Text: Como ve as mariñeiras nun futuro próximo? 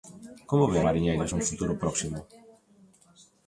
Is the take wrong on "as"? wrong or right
wrong